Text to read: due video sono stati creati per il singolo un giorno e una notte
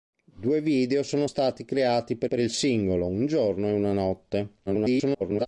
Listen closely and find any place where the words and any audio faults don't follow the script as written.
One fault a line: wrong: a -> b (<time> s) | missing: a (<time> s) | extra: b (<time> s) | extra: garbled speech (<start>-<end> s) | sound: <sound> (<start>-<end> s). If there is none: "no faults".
extra: per (2.2 s)
extra: garbled speech (4.7-5.5 s)